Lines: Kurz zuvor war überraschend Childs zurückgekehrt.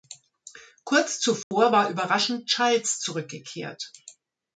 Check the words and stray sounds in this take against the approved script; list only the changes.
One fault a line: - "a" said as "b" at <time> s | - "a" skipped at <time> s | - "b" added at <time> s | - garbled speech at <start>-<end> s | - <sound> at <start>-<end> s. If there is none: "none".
- dropout at 1.4-1.5 s